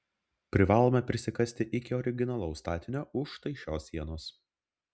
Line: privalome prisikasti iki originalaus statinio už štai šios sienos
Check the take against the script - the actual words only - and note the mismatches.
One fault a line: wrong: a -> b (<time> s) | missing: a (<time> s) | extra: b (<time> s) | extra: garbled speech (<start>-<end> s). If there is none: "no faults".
no faults